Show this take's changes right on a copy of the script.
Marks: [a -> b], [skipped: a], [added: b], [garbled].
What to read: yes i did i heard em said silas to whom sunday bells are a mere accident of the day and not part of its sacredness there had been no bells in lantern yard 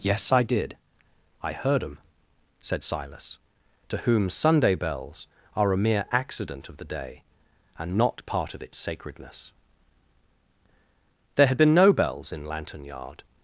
yes i did i heard em said silas to whom sunday bells are a mere accident of the day and not part of its sacredness there had been no bells in lantern yard